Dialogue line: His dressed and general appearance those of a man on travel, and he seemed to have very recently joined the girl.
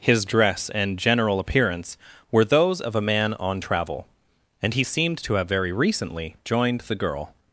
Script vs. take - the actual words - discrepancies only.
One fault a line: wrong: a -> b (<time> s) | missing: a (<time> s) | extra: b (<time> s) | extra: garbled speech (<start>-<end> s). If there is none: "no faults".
wrong: dressed -> dress (0.2 s)
extra: were (2.3 s)